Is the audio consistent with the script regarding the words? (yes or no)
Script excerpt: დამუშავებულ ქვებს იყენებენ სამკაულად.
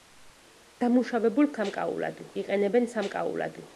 no